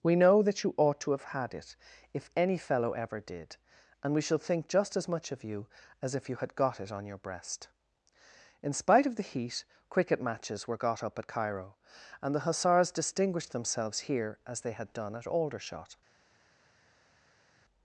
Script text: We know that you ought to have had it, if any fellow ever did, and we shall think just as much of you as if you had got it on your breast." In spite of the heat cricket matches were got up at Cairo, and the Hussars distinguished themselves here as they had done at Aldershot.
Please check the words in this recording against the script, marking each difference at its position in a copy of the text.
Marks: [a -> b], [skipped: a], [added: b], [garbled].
We know that you ought to have had it, if any fellow ever did, and we shall think just as much of you as if you had got it on your breast." In spite of the heat cricket matches were got up at Cairo, and the Hussars distinguished themselves here as they had done at Aldershot.